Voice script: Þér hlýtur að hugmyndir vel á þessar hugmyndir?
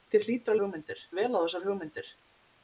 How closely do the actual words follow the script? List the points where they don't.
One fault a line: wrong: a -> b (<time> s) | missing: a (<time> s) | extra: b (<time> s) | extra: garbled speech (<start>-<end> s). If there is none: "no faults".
no faults